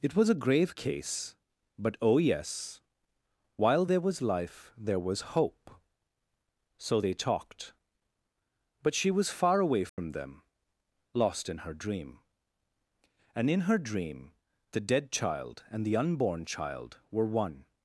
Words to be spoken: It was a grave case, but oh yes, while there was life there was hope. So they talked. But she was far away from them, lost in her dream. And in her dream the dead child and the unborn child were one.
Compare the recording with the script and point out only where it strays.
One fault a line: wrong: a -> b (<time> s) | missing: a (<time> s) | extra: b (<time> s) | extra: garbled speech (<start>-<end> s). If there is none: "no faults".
no faults